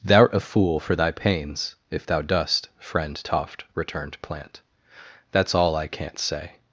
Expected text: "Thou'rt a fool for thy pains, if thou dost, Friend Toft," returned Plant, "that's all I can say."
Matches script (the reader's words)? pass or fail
fail